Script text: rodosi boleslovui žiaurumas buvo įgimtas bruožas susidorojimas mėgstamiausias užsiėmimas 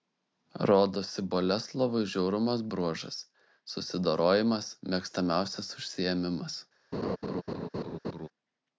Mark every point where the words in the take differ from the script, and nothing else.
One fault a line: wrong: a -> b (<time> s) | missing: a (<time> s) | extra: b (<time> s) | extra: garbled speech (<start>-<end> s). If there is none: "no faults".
missing: buvo įgimtas (2.6 s)